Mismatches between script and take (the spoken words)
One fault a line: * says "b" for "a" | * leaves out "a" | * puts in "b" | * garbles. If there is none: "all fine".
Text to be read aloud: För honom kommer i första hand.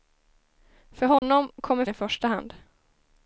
all fine